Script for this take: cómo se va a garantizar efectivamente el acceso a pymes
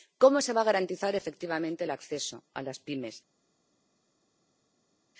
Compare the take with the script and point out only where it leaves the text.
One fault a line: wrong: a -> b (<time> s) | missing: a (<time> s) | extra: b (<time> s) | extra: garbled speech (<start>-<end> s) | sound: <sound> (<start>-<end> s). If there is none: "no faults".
extra: las (2.6 s)